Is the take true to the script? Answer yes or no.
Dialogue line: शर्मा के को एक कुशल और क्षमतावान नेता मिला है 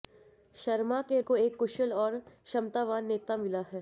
yes